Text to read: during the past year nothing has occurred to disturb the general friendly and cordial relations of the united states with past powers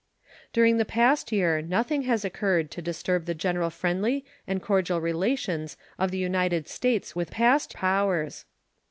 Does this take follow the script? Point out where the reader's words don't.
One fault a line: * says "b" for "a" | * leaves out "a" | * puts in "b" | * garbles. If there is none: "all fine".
all fine